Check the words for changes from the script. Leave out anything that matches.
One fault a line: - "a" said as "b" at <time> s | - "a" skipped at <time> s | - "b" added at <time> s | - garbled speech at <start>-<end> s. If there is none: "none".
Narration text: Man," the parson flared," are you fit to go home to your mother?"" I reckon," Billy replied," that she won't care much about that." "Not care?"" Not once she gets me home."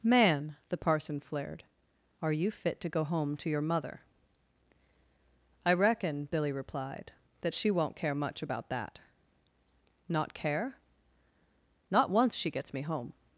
none